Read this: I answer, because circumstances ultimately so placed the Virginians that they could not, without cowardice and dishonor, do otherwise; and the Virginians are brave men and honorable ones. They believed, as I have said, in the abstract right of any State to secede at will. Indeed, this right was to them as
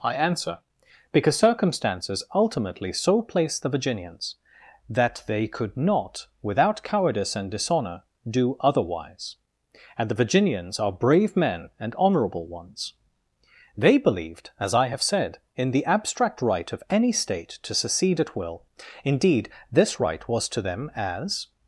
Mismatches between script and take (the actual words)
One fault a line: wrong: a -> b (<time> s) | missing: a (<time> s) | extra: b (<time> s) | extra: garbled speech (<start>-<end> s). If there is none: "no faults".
no faults